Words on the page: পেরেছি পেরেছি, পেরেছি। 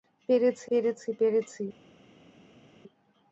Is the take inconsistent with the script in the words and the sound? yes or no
no